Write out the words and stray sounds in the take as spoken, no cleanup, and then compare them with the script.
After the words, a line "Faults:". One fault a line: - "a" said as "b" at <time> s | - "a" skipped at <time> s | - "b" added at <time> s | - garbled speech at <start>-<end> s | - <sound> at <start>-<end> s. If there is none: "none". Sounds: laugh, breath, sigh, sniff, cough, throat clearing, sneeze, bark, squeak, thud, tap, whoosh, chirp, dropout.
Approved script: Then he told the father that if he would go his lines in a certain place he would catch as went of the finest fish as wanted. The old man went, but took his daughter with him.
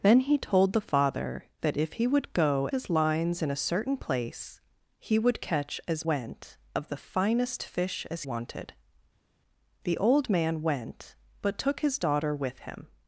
Then he told the father that if he would go his lines in a certain place he would catch as went of the finest fish as wanted. The old man went, but took his daughter with him.
Faults:
none